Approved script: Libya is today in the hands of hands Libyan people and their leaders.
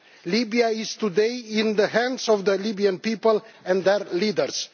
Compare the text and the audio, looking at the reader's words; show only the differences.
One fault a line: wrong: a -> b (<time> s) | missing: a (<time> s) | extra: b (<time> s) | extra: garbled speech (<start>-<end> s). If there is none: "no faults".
wrong: hands -> the (2.4 s)